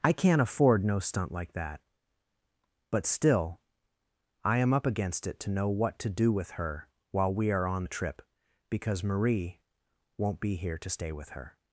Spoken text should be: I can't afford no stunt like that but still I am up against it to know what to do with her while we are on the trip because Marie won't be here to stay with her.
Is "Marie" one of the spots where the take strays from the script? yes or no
no